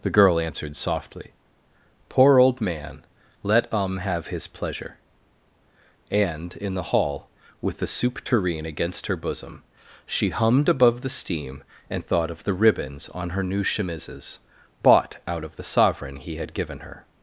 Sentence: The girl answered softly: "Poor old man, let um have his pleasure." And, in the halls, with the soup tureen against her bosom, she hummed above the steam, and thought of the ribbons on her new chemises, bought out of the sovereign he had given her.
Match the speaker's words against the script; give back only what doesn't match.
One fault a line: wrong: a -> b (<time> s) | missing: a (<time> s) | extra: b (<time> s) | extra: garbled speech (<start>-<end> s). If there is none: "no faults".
wrong: halls -> hall (6.9 s)